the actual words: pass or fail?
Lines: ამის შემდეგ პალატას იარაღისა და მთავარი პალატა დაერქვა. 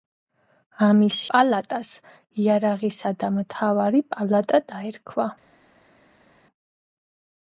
fail